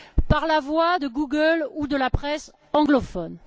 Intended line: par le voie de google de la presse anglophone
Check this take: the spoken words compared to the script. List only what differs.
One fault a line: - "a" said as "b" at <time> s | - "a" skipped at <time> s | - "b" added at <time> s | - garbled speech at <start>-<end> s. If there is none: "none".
- "le" said as "la" at 0.5 s
- "ou" added at 1.7 s